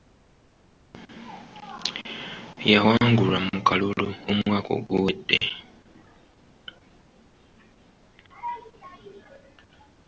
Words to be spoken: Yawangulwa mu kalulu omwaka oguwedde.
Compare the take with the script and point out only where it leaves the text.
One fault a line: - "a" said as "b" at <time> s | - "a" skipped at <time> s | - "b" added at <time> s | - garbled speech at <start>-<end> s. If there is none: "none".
none